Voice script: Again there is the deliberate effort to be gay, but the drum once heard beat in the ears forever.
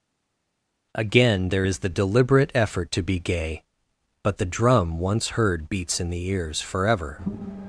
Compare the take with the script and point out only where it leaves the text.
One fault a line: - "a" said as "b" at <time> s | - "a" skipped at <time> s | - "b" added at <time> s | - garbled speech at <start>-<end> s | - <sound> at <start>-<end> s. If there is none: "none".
- "beat" said as "beats" at 5.7 s